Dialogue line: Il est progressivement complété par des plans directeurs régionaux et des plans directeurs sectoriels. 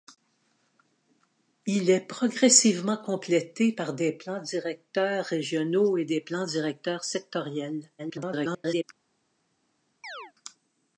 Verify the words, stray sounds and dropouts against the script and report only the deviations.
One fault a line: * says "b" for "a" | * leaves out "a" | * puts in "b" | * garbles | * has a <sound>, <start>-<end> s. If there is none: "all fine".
* garbles
* has a chirp, 10.0-10.3 s